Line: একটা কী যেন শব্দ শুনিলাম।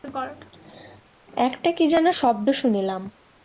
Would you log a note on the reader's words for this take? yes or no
no